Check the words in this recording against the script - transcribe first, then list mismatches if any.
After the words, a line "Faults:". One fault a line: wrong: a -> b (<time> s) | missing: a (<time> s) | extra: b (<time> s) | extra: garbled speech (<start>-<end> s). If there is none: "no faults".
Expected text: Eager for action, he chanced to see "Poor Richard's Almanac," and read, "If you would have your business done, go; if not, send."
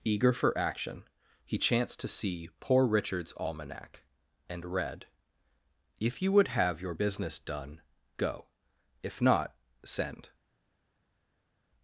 Eager for action, he chanced to see "Poor Richard's Almanac," and read, "If you would have your business done, go; if not, send."
Faults:
no faults